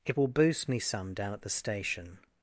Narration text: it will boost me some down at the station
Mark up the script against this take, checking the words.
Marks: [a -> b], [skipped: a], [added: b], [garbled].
it will boost me some down at the station